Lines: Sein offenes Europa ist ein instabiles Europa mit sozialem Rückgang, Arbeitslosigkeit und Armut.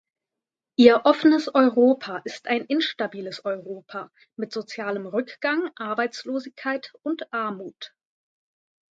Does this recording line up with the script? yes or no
no